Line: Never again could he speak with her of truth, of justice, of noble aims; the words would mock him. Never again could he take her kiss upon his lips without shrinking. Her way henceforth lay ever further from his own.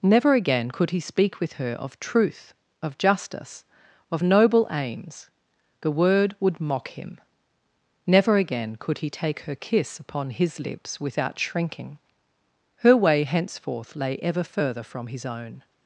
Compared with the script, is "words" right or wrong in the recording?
wrong